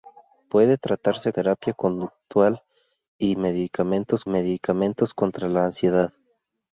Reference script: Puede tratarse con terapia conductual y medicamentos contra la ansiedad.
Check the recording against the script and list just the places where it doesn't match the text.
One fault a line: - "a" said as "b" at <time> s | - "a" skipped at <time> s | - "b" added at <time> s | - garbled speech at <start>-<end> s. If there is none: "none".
- "con" skipped at 1.3 s
- "medicamentos" added at 4.3 s